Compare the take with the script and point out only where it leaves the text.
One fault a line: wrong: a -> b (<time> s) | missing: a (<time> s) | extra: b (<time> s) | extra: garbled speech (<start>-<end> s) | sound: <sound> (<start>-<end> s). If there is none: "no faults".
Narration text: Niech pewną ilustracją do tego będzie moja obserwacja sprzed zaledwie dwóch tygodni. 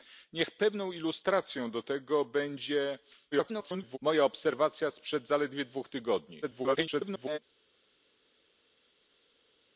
extra: garbled speech (3.3-4.0 s)
extra: garbled speech (6.4-7.4 s)